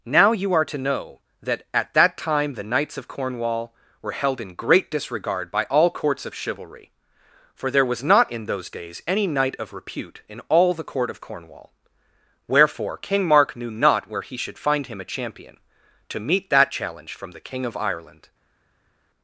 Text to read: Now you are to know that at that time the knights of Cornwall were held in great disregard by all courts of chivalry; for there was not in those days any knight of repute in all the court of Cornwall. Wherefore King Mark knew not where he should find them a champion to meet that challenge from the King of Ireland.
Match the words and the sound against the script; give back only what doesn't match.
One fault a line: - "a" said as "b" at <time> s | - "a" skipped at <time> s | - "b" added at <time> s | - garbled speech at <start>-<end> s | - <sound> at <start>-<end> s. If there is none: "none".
- "them" said as "him" at 14.9 s